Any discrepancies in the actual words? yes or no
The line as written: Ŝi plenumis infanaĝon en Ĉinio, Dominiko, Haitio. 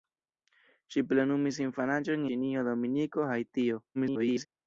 yes